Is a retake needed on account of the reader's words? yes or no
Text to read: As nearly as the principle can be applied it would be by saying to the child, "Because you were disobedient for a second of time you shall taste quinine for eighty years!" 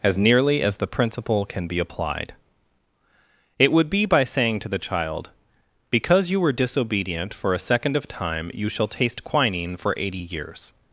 no